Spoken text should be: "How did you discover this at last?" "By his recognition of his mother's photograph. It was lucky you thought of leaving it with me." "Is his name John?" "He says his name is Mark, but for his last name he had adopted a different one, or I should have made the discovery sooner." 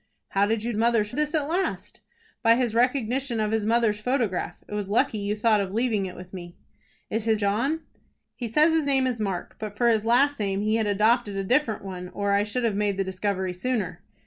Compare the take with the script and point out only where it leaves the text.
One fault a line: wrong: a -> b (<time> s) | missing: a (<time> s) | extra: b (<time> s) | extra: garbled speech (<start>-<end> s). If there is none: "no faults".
wrong: discover -> mother's (0.8 s)
missing: name (7.4 s)